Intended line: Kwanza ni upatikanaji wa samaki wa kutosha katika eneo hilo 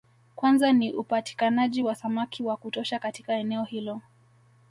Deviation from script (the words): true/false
false